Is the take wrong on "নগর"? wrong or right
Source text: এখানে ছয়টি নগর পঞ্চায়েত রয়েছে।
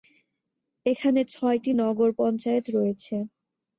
right